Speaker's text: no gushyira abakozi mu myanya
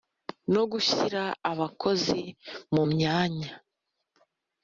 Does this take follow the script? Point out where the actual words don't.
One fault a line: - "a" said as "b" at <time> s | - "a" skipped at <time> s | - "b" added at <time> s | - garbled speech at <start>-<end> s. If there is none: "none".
none